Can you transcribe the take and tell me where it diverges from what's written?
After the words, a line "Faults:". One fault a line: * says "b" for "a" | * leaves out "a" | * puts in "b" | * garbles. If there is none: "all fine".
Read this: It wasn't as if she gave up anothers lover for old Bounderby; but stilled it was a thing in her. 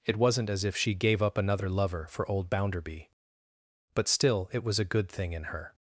It wasn't as if she gave up another lover for old Bounderby; but still it was a good thing in her.
Faults:
* says "another" for "anothers"
* says "still" for "stilled"
* puts in "good"